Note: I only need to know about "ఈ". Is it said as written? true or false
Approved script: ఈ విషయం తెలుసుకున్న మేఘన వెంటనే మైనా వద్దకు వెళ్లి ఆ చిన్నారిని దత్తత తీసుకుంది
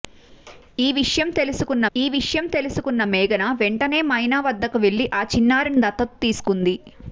true